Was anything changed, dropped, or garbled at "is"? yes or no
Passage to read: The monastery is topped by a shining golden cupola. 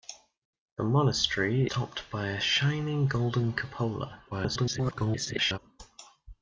yes